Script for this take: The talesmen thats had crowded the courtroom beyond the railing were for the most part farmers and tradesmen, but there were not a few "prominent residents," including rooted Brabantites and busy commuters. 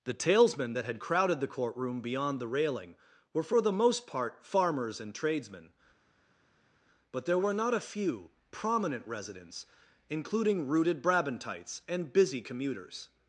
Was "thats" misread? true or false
true